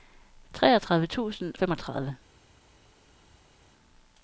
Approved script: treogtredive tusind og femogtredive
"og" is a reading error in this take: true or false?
true